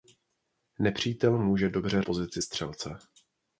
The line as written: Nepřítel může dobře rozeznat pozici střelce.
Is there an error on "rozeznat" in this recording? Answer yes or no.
yes